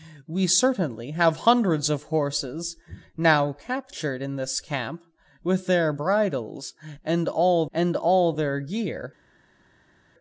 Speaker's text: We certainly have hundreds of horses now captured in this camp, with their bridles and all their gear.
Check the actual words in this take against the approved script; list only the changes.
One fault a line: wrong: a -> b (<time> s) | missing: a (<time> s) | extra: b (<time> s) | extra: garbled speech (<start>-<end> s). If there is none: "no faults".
extra: and all (7.7 s)